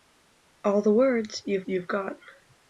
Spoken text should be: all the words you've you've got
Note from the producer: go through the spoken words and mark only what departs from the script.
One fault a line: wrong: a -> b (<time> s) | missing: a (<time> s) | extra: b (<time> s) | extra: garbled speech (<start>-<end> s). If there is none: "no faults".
no faults